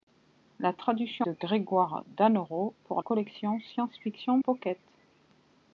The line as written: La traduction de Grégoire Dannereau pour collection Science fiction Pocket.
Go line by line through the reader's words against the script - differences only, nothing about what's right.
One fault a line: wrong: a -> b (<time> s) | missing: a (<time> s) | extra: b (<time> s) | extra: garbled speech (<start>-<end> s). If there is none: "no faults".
no faults